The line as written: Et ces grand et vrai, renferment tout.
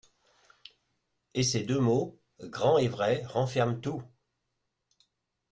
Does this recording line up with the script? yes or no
no